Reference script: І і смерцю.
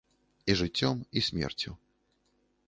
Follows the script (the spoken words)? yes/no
no